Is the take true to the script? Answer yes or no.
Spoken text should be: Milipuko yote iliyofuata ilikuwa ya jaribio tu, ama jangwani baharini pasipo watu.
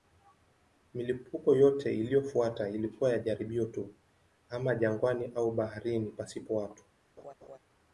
no